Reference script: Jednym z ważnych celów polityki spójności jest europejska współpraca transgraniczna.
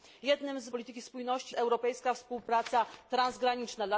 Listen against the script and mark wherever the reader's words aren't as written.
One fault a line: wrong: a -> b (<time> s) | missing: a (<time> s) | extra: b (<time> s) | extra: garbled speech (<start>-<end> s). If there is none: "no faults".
missing: ważnych celów (0.7 s)
missing: jest (1.6 s)